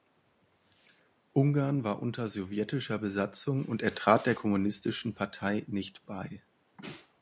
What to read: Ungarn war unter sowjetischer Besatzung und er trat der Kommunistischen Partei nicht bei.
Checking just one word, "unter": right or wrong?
right